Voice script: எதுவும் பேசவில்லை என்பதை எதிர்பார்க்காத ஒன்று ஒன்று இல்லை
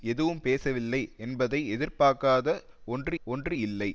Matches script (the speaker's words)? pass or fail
pass